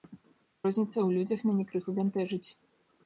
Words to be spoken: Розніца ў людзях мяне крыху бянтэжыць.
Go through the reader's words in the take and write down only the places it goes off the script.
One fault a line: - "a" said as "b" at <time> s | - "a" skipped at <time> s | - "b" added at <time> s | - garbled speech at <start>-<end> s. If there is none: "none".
none